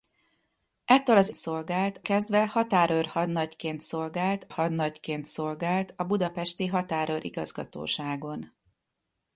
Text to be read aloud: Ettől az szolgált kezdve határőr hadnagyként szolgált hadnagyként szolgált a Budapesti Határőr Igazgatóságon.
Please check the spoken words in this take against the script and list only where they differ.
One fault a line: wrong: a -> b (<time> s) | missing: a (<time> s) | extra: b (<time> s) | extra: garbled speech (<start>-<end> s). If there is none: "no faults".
no faults